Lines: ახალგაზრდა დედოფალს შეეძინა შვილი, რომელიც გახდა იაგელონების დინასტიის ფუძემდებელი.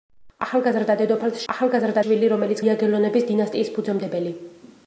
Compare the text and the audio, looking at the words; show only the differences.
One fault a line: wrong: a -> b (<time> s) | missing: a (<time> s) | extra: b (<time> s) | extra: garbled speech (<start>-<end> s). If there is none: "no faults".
wrong: შეეძინა -> ახალგაზრდა (1.5 s)
missing: გახდა (2.6 s)